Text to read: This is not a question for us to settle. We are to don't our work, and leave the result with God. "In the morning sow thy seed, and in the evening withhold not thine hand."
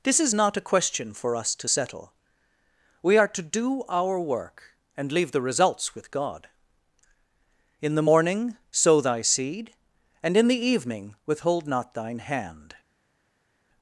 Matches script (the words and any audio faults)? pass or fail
fail